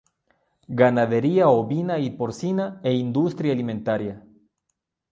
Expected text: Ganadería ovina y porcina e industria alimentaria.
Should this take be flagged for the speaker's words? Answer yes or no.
no